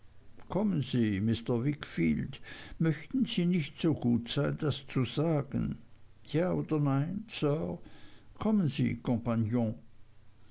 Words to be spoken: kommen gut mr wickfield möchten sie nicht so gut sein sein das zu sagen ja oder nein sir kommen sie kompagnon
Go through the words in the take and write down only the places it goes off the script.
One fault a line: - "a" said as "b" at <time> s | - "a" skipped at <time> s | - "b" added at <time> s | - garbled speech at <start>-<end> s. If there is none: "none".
- "gut" said as "sie" at 0.8 s
- "sein" skipped at 4.6 s